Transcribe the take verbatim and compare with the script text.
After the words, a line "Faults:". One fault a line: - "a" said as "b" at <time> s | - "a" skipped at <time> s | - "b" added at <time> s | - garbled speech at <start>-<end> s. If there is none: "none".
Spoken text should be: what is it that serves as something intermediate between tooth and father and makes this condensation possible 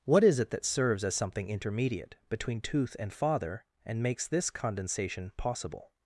what is it that serves as something intermediate between tooth and father and makes this condensation possible
Faults:
none